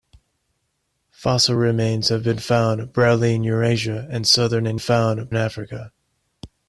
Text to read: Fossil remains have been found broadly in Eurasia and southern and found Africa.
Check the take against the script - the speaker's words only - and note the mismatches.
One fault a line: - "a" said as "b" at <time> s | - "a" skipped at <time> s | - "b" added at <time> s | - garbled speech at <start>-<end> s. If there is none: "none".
none